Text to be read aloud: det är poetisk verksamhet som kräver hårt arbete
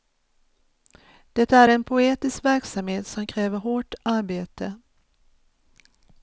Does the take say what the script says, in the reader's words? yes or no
no